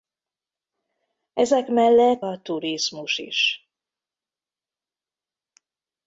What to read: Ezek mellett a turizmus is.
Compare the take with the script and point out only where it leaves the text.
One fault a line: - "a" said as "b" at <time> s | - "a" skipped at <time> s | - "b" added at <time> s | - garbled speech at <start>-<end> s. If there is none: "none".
none